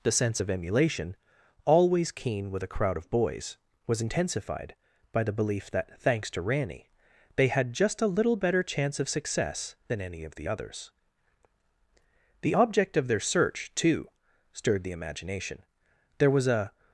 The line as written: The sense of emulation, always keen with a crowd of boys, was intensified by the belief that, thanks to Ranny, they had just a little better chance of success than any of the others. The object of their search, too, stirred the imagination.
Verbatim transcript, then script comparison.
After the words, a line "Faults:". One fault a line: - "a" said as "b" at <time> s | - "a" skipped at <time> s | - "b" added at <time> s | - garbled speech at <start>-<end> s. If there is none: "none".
The sense of emulation, always keen with a crowd of boys, was intensified by the belief that, thanks to Ranny, they had just a little better chance of success than any of the others. The object of their search, too, stirred the imagination. There was a
Faults:
- "There was a" added at 16.2 s